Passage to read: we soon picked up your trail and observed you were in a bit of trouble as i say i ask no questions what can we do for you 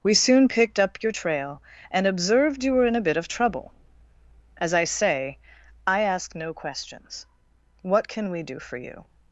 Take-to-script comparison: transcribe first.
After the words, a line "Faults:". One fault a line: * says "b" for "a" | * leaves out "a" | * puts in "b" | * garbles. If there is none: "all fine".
we soon picked up your trail and observed you were in a bit of trouble as i say i ask no questions what can we do for you
Faults:
all fine